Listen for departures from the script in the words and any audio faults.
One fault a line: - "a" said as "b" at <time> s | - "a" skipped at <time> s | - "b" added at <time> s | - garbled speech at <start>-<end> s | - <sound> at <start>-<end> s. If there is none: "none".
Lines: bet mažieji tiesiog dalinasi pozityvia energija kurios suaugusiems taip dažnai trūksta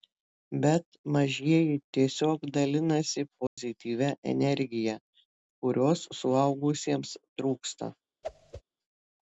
- dropout at 3.5-3.6 s
- "taip dažnai" skipped at 7.1 s
- whoosh at 8.2-8.6 s